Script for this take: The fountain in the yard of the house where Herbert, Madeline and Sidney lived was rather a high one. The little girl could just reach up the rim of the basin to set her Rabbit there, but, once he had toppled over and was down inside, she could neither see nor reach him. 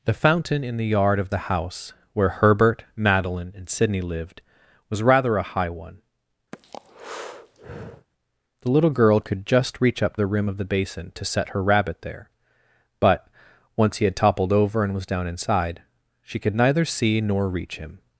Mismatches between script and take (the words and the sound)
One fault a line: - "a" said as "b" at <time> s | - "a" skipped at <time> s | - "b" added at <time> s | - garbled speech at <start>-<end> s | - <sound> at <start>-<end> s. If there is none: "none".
- breath at 6.5-8.1 s